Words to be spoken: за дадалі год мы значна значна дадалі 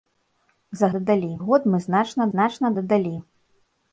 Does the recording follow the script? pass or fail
pass